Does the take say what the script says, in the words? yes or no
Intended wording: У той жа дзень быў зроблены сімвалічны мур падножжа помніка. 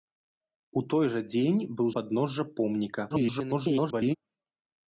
no